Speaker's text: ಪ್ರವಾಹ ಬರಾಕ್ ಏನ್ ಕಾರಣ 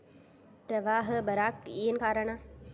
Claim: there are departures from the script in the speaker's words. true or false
false